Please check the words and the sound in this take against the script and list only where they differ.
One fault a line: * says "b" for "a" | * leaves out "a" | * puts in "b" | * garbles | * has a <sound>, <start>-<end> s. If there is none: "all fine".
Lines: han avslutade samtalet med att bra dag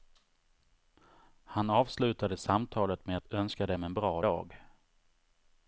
* puts in "önska dem en"